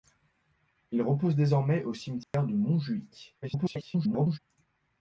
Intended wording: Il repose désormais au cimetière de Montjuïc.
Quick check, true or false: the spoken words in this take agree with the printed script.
false